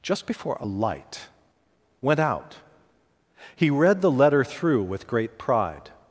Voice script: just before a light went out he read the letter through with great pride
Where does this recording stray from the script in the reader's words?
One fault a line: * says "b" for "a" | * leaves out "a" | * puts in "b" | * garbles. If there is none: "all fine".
all fine